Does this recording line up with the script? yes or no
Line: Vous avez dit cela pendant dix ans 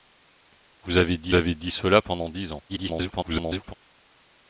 no